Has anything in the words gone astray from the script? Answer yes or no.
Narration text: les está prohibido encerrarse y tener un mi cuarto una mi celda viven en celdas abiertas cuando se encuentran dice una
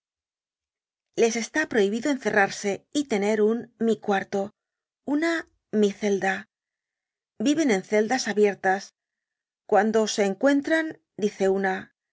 no